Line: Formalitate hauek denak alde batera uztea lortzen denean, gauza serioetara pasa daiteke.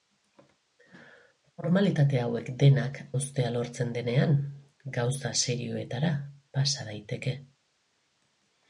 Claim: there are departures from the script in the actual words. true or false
true